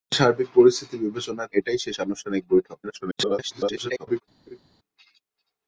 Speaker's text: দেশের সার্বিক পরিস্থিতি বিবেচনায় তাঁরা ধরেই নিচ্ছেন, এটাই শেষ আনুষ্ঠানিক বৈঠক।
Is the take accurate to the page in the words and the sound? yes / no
no